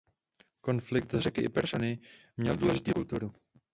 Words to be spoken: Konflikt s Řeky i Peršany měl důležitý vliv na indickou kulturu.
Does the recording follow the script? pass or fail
fail